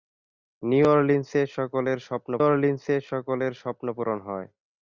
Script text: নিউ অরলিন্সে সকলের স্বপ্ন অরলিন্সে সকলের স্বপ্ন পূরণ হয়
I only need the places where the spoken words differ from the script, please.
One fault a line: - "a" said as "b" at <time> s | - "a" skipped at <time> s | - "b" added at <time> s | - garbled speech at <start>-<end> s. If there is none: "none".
none